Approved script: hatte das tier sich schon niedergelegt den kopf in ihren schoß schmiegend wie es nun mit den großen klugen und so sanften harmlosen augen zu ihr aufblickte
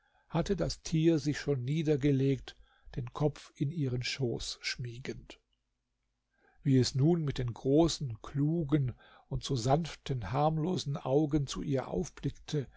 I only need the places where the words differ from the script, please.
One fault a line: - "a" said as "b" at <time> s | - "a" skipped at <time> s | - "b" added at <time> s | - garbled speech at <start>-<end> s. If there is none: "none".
none